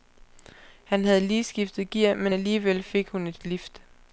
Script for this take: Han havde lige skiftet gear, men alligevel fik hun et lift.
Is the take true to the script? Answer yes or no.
yes